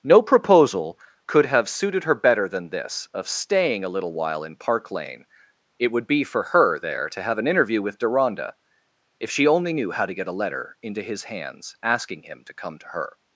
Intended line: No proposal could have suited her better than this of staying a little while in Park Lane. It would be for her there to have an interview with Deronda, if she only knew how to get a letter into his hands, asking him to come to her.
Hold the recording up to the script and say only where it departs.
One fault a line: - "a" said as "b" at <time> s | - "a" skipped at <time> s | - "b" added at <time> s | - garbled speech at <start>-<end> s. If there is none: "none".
none